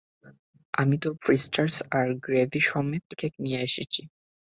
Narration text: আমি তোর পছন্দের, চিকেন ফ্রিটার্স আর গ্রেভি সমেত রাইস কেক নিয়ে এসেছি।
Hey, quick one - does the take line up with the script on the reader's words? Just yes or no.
no